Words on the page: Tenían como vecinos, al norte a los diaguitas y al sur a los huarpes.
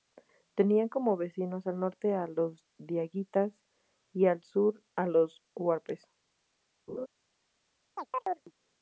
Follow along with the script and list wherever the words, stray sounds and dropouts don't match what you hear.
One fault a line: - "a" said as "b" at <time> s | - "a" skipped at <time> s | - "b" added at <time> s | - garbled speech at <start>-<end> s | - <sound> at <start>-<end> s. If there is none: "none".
- laugh at 6.9-7.1 s
- chirp at 8.0-8.5 s